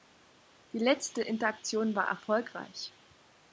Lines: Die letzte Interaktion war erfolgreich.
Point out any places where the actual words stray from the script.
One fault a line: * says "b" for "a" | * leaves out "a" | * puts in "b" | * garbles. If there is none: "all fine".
all fine